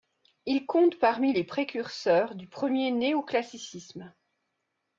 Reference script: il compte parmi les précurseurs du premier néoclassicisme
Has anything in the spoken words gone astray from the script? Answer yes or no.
no